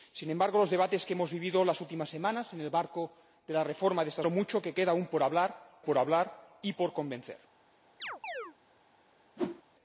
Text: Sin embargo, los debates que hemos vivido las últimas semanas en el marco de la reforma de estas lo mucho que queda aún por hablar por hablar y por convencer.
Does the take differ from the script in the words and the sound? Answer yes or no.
yes